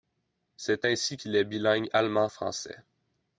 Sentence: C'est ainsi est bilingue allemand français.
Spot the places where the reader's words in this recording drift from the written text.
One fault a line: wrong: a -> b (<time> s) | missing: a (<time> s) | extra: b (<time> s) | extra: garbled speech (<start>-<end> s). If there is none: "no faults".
extra: qu'il (1.2 s)